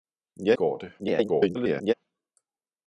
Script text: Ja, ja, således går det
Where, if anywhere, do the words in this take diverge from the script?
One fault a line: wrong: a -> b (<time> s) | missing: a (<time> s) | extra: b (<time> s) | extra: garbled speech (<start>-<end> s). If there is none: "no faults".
missing: ja således (0.6 s)
extra: garbled speech (1.0-1.9 s)